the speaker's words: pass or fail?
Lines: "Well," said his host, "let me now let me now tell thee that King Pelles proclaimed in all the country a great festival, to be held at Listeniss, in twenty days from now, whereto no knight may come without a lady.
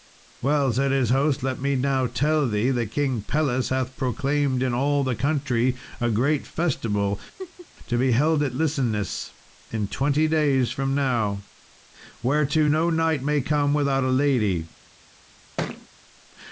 fail